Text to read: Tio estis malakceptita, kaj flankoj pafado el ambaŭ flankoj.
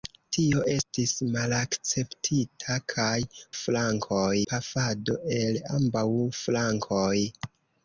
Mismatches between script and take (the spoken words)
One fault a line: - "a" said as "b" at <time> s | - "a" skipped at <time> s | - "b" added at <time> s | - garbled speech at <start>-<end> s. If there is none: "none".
none